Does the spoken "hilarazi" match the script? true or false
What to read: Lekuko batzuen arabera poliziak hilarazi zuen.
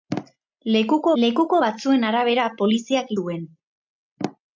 false